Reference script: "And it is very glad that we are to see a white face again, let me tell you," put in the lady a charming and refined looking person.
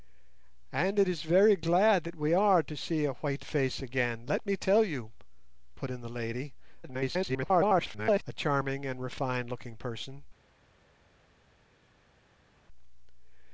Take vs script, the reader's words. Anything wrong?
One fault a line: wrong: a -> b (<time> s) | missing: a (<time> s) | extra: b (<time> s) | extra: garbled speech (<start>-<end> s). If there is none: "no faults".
extra: garbled speech (6.8-8.2 s)